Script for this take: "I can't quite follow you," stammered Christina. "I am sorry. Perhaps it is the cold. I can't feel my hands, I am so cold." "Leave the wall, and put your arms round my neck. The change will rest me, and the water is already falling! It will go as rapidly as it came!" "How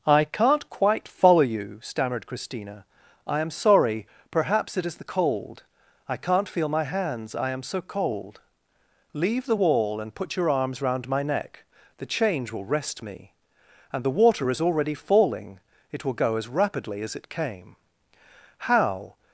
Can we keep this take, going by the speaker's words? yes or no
yes